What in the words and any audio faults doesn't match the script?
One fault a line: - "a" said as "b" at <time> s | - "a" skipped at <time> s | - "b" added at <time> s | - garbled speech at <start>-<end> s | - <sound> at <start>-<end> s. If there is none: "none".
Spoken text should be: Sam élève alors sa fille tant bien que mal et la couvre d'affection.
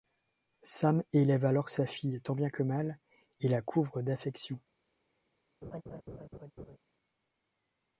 - laugh at 5.6-6.8 s